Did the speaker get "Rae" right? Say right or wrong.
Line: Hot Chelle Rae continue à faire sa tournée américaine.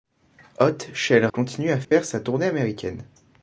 wrong